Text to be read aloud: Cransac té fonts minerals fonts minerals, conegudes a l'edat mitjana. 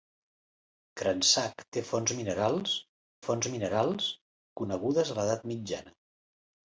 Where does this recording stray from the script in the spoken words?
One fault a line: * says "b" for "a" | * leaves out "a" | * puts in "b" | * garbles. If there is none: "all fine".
all fine